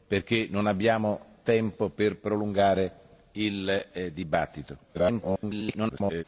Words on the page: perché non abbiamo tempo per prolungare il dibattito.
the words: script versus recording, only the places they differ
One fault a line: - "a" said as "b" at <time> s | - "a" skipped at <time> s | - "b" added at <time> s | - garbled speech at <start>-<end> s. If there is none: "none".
- garbled speech at 4.9-6.2 s